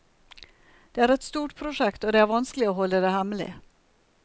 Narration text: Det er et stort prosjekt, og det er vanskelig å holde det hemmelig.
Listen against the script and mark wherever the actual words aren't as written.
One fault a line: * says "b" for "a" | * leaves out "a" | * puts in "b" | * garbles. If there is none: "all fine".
all fine